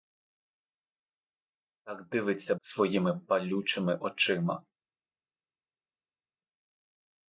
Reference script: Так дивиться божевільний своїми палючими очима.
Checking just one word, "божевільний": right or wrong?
wrong